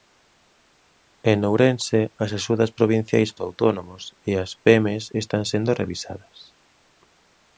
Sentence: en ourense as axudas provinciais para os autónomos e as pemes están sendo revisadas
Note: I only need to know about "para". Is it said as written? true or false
false